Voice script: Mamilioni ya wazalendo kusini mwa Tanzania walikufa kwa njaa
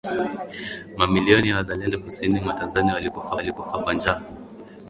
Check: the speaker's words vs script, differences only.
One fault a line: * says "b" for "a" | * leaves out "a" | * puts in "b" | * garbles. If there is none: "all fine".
* puts in "walikufa"